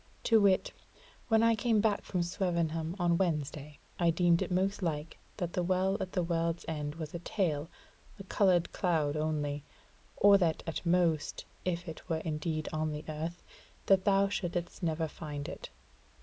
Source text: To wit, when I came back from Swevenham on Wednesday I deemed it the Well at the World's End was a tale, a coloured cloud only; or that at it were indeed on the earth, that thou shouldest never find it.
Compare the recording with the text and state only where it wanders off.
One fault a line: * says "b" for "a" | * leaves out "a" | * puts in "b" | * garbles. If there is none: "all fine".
* puts in "most like that"
* puts in "most if"